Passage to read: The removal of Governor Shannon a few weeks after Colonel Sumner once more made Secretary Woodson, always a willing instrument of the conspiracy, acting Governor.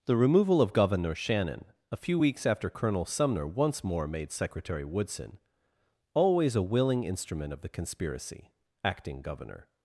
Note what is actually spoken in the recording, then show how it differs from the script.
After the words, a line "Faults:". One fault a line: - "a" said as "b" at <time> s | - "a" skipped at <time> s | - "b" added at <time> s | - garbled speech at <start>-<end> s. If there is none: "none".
The removal of Governor Shannon a few weeks after Colonel Sumner once more made Secretary Woodson, always a willing instrument of the conspiracy, acting Governor.
Faults:
none